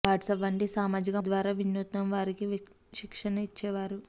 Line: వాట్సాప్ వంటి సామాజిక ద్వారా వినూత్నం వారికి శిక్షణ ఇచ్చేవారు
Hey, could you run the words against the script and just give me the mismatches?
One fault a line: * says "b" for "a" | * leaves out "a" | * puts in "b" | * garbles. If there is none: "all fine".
all fine